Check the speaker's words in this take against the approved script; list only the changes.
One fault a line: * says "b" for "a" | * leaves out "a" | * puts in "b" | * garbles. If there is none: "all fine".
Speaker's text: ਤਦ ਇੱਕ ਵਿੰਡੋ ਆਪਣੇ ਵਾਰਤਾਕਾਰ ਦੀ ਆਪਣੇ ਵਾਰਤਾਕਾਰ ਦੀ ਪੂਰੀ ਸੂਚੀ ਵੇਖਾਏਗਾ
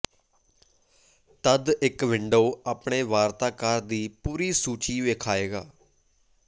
* leaves out "ਆਪਣੇ ਵਾਰਤਾਕਾਰ ਦੀ"